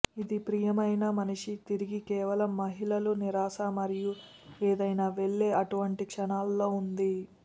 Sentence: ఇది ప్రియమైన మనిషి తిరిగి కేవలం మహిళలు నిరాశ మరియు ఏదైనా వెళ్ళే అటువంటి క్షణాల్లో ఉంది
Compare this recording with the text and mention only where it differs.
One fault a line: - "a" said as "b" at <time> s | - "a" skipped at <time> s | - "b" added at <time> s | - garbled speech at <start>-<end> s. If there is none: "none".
none